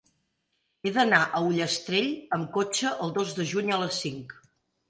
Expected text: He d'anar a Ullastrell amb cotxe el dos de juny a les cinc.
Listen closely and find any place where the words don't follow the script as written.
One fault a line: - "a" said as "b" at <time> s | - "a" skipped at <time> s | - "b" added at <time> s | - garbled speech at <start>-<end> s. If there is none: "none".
none